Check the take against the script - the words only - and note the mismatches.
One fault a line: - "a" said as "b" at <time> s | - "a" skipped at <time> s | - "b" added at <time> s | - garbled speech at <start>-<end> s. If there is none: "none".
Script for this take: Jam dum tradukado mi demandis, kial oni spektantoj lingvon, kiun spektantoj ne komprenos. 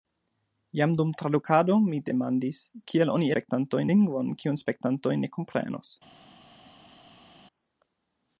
none